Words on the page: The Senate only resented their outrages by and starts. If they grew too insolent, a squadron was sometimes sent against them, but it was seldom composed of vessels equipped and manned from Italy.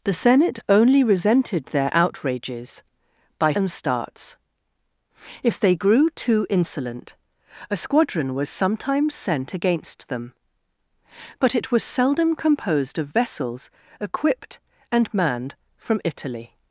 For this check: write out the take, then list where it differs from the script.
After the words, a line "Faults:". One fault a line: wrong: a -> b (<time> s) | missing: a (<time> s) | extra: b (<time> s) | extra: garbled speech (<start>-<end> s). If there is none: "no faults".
The Senate only resented their outrages by and starts. If they grew too insolent, a squadron was sometimes sent against them, but it was seldom composed of vessels equipped and manned from Italy.
Faults:
no faults